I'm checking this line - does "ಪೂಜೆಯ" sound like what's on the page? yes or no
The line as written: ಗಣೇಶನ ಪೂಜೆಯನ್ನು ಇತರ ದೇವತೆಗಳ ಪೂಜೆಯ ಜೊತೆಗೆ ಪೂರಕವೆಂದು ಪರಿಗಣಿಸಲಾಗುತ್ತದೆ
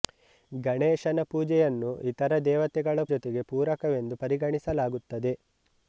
no